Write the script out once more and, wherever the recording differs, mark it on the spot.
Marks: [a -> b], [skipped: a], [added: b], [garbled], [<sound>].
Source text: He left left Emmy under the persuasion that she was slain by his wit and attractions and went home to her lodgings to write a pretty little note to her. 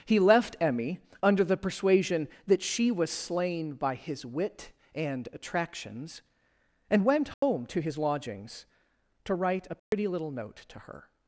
He left [skipped: left] Emmy under the persuasion that she was slain by his wit and attractions and went home [dropout] to [her -> his] lodgings to write a pretty [dropout] little note to her.